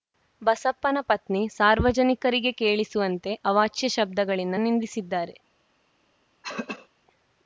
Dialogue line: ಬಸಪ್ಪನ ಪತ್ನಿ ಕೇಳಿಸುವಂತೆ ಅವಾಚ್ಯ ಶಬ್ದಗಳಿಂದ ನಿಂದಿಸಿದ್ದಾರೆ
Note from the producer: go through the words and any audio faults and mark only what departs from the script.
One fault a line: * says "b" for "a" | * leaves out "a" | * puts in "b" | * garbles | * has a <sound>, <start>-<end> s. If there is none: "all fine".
* puts in "ಸಾರ್ವಜನಿಕರಿಗೆ"
* has a throat clearing, 6.4-6.9 s